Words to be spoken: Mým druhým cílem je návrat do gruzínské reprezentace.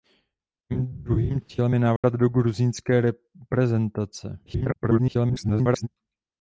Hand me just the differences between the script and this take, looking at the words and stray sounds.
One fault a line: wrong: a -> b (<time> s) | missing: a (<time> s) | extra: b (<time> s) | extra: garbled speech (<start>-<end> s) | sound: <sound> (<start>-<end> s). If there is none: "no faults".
sound: dropout (2.0-2.0 s)
extra: garbled speech (4.5-5.9 s)